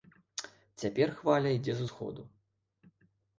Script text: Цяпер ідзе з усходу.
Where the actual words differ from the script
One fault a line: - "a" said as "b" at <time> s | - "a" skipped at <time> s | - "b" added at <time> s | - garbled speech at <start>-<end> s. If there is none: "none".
- "хваля" added at 1.2 s